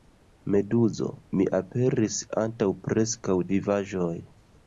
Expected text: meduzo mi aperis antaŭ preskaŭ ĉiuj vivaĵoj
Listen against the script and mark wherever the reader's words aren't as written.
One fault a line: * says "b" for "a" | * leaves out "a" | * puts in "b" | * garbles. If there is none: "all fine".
* leaves out "ĉiuj"